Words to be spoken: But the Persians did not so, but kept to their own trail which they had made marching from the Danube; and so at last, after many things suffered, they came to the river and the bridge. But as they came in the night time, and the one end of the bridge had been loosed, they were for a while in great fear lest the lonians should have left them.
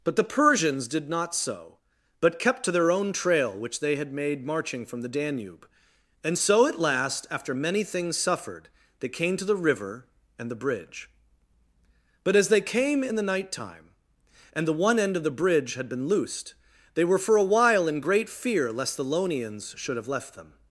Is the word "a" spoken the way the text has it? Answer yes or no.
yes